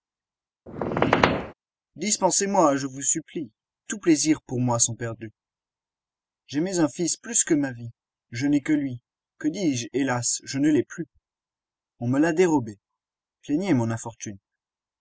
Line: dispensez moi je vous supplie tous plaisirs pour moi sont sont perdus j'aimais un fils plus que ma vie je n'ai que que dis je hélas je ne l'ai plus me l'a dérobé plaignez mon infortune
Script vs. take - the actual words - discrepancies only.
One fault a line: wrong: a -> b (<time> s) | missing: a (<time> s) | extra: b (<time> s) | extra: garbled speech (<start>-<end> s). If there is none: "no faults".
missing: sont (5.0 s)
extra: lui (8.7 s)
extra: on (12.0 s)